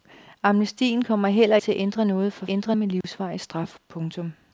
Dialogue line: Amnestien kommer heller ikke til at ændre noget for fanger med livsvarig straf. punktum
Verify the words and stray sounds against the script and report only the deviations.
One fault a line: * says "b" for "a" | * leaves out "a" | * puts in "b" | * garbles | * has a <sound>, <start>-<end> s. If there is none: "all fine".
* leaves out "ikke"
* says "ændre" for "fanger"
* has a dropout, 3.0-3.0 s